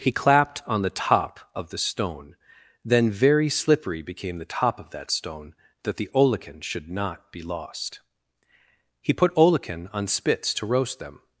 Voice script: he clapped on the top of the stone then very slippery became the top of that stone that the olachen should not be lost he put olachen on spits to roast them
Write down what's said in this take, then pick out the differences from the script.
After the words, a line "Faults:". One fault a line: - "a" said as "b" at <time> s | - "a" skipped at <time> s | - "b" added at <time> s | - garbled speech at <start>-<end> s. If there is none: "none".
he clapped on the top of the stone then very slippery became the top of that stone that the olachen should not be lost he put olachen on spits to roast them
Faults:
none